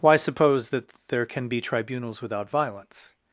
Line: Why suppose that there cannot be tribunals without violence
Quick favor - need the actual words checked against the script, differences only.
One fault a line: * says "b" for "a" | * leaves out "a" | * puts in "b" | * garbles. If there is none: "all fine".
* says "can" for "cannot"